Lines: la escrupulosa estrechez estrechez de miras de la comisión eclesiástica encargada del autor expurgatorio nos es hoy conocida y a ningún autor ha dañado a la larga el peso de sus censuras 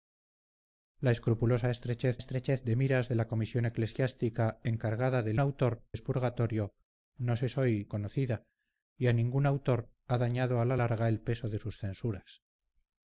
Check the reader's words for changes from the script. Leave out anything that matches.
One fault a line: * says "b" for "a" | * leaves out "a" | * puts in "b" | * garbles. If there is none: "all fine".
all fine